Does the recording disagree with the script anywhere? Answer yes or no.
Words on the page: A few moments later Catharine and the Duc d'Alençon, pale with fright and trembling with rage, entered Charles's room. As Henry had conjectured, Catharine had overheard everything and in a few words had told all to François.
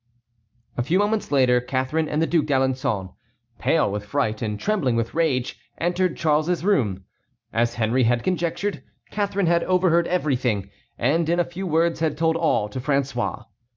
no